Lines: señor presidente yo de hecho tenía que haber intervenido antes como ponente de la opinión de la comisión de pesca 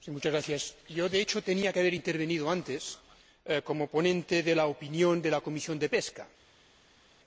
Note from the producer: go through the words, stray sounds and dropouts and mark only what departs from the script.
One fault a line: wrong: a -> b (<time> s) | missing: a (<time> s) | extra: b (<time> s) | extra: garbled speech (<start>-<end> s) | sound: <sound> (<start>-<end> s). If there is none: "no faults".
no faults